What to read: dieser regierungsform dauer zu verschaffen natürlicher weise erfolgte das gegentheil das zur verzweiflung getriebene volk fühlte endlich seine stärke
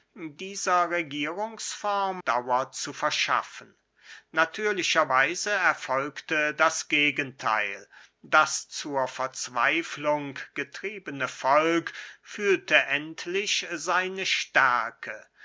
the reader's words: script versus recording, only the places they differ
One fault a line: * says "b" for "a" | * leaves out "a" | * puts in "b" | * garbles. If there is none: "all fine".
all fine